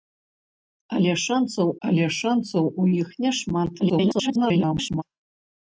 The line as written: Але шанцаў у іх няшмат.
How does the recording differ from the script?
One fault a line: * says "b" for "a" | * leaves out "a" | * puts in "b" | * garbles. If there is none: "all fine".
* puts in "але шанцаў"
* garbles